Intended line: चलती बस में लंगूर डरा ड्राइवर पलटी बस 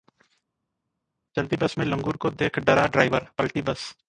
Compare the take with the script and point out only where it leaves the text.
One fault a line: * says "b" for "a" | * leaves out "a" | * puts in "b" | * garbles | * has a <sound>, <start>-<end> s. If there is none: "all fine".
* puts in "को देख"